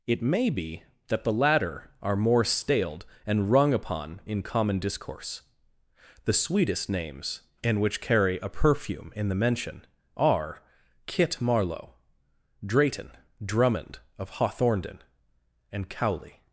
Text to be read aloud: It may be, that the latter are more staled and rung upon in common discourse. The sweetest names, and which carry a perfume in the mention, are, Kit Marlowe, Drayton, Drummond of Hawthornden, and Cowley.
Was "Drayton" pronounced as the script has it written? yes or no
yes